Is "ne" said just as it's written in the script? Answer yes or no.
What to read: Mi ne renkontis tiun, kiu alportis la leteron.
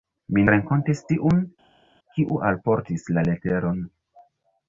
no